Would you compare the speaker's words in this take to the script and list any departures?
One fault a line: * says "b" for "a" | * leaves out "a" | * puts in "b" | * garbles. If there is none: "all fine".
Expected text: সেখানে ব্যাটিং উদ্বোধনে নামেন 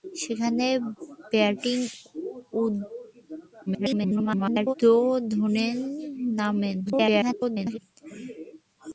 * garbles
* garbles